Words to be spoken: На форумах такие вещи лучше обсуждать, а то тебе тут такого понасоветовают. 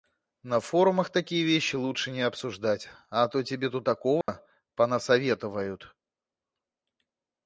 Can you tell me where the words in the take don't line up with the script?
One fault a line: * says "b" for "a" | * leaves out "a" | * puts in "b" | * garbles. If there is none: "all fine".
* puts in "не"